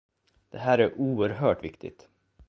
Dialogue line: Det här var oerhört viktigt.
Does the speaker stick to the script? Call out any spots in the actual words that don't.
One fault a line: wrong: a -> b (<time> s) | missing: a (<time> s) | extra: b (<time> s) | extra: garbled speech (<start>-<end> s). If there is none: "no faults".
wrong: var -> är (0.8 s)